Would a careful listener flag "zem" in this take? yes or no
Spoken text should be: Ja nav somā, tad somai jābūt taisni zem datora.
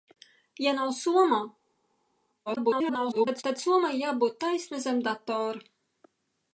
no